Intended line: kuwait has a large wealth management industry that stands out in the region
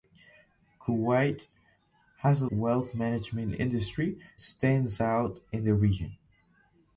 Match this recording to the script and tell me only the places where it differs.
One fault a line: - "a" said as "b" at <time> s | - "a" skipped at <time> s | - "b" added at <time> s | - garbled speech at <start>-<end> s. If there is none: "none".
- "large" skipped at 2.5 s
- "that" skipped at 4.2 s